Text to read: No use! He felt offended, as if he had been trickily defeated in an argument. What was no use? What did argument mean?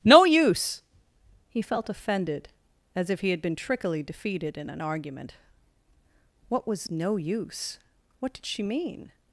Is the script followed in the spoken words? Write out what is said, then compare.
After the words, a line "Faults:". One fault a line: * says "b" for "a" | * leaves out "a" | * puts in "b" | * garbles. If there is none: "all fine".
No use! He felt offended, as if he had been trickily defeated in an argument. What was no use? What did she mean?
Faults:
* says "she" for "argument"